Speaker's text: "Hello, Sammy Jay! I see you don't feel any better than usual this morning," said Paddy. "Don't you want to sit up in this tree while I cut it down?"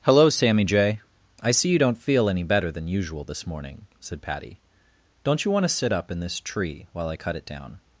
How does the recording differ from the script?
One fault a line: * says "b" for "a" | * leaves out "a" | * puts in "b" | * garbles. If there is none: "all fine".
all fine